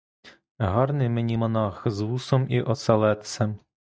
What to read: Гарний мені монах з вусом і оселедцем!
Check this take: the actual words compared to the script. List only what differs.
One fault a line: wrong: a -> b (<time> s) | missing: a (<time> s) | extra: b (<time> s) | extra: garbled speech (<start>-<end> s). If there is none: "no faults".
no faults